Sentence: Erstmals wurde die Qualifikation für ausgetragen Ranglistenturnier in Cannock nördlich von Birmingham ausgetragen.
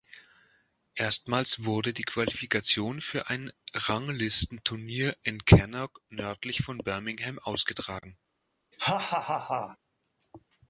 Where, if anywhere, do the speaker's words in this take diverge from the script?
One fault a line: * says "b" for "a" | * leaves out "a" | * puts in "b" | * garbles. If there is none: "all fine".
* says "ein" for "ausgetragen"